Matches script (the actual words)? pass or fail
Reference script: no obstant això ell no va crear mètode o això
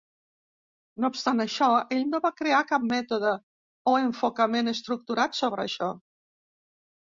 fail